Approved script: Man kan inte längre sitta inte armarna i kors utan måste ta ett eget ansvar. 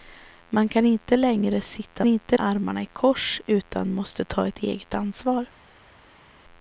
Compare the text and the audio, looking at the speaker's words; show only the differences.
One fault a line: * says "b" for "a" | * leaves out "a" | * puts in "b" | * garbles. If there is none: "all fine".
all fine